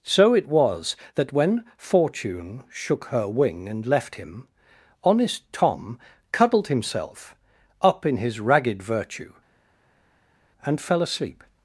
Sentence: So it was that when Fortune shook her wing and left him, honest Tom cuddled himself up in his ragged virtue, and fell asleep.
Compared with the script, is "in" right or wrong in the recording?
right